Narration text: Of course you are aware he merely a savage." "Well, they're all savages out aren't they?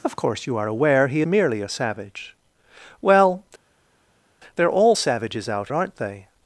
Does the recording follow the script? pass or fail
pass